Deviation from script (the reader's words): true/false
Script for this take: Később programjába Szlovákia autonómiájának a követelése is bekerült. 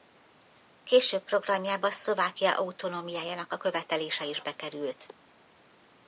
false